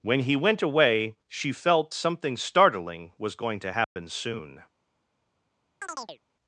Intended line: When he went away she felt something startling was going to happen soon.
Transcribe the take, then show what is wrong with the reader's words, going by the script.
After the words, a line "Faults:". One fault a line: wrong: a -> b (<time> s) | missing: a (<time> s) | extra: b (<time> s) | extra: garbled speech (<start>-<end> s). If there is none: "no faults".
When he went away she felt something startling was going to happen soon.
Faults:
no faults